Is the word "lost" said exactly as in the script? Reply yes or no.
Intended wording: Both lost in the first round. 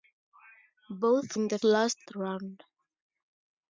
no